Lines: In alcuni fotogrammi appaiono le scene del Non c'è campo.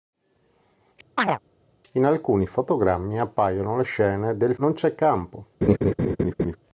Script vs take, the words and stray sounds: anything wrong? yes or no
yes